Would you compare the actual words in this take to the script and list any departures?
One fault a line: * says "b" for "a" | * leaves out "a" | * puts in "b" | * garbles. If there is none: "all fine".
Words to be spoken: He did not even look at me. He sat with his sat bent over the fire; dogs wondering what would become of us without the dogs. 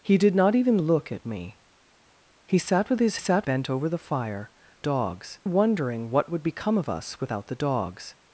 all fine